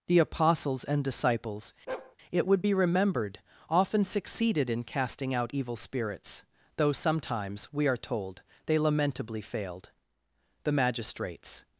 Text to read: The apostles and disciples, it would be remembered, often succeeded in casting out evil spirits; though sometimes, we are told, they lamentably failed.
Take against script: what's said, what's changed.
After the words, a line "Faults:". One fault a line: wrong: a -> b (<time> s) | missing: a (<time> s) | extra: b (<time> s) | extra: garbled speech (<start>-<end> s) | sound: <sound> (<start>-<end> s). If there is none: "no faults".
The apostles and disciples, it would be remembered, often succeeded in casting out evil spirits; though sometimes, we are told, they lamentably failed. The magistrates
Faults:
sound: bark (1.9-2.2 s)
extra: The magistrates (10.6 s)